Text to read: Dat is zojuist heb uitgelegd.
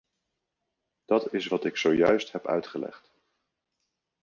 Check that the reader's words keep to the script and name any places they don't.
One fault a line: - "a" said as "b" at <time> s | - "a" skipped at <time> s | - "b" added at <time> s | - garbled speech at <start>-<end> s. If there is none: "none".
- "wat ik" added at 1.5 s